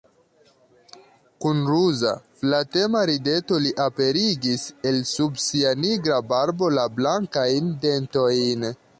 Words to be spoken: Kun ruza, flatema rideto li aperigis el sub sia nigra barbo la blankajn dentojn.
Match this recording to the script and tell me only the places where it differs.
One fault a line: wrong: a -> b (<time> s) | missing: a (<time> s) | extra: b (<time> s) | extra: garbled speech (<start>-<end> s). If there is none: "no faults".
no faults